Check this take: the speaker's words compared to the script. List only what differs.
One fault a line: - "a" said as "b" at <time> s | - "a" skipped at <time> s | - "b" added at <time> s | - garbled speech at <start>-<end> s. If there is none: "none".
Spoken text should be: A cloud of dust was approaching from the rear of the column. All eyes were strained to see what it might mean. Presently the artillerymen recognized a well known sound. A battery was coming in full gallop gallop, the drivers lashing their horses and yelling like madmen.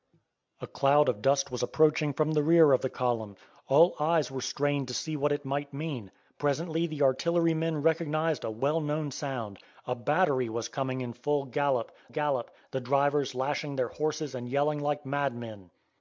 none